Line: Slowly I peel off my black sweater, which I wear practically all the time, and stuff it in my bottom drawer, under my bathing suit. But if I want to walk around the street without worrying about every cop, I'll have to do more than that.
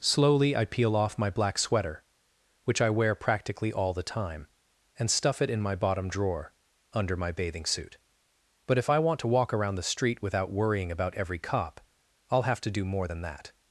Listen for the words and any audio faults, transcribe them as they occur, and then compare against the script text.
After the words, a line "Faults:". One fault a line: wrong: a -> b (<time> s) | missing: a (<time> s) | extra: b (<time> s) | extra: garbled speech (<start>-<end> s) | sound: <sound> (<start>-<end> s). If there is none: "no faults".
Slowly I peel off my black sweater, which I wear practically all the time, and stuff it in my bottom drawer, under my bathing suit. But if I want to walk around the street without worrying about every cop, I'll have to do more than that.
Faults:
no faults